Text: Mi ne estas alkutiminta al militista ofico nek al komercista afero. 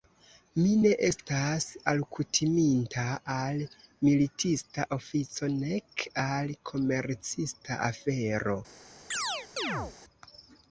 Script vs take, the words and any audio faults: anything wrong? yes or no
yes